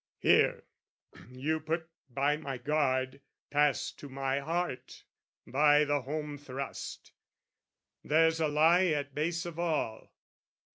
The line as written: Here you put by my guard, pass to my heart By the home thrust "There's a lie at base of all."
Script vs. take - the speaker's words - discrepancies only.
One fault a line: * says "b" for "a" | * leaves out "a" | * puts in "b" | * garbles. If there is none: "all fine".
all fine